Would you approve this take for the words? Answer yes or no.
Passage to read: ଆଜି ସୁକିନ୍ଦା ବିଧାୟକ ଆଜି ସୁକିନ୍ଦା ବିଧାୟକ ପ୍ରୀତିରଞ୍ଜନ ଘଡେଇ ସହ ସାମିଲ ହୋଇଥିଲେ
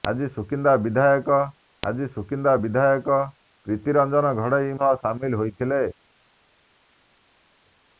yes